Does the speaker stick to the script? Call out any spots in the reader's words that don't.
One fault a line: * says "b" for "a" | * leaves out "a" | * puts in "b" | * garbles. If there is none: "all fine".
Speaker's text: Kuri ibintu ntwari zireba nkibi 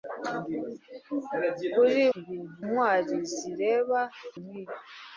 all fine